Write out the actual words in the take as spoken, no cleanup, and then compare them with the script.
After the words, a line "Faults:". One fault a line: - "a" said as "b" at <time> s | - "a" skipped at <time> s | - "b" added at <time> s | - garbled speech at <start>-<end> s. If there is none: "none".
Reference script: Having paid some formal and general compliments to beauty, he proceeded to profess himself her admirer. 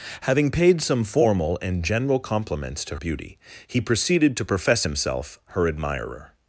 Having paid some formal and general compliments to beauty, he proceeded to profess himself her admirer.
Faults:
none